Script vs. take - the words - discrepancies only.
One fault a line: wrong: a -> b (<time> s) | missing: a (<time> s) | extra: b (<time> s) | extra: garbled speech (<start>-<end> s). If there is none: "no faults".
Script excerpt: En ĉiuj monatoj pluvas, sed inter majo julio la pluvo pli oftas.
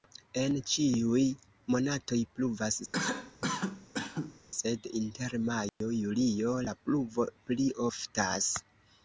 no faults